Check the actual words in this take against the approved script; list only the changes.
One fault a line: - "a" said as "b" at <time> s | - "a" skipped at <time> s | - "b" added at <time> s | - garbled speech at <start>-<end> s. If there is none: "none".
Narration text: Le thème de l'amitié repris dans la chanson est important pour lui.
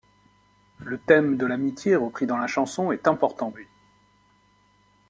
- "pour" skipped at 3.5 s